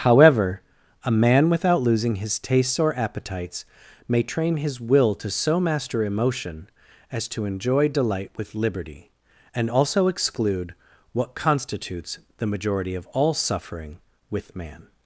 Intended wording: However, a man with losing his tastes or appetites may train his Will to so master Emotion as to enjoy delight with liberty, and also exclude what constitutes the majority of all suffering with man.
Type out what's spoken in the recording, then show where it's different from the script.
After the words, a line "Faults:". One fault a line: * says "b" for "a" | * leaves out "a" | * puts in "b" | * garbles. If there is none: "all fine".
However, a man without losing his tastes or appetites may train his Will to so master Emotion as to enjoy delight with liberty, and also exclude what constitutes the majority of all suffering with man.
Faults:
* says "without" for "with"